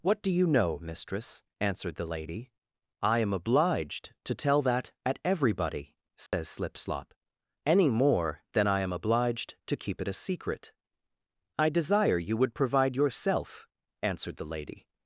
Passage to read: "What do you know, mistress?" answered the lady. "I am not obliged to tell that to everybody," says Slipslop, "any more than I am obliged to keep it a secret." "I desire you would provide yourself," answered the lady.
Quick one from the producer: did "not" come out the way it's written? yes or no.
no